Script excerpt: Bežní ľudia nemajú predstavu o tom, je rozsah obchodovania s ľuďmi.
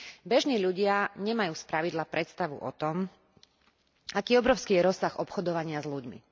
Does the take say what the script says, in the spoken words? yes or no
no